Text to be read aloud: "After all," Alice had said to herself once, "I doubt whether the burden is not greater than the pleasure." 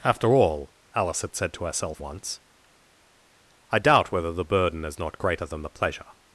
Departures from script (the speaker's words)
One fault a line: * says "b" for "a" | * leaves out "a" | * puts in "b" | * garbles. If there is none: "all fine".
all fine